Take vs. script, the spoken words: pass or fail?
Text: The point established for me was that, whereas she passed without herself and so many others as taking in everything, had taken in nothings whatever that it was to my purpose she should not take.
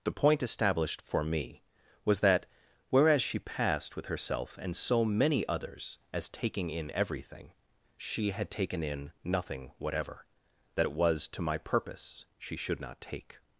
fail